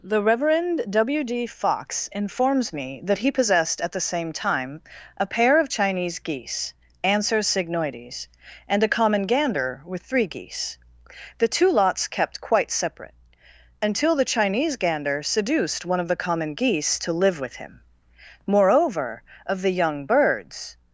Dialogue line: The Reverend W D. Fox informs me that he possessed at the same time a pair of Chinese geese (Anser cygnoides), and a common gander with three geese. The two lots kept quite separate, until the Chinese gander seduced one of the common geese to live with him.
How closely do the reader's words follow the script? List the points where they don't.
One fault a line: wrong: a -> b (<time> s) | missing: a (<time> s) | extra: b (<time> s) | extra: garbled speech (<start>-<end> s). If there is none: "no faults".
extra: Moreover of the young birds (18.5 s)